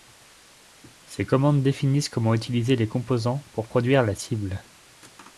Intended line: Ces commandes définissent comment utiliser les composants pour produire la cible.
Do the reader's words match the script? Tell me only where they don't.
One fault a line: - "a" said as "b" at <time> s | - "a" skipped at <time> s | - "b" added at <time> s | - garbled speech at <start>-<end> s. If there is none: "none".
none